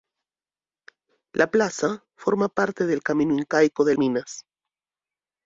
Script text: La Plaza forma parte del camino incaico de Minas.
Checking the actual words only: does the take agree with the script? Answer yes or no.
yes